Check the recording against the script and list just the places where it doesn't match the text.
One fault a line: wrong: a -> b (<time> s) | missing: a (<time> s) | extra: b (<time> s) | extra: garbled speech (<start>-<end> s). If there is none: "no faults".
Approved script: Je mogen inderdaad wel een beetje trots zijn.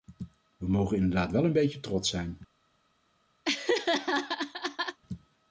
wrong: Je -> We (0.6 s)